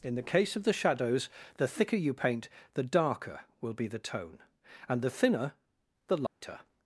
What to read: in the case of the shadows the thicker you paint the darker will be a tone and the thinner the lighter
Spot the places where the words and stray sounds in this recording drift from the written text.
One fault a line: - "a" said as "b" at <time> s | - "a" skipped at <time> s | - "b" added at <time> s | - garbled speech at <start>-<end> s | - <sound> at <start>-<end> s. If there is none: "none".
- "a" said as "the" at 3.9 s
- dropout at 6.3-6.4 s